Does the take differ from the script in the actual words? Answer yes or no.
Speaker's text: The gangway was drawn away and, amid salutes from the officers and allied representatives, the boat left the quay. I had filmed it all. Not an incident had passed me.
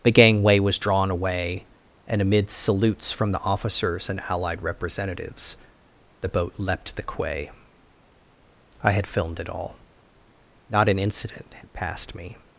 yes